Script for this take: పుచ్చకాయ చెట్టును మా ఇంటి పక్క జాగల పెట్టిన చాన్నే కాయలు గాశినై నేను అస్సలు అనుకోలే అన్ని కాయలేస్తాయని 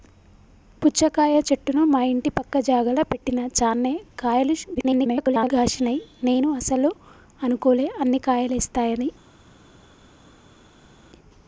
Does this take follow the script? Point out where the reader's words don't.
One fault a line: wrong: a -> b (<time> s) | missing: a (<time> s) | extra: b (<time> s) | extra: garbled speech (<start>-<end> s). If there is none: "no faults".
extra: garbled speech (4.7-5.5 s)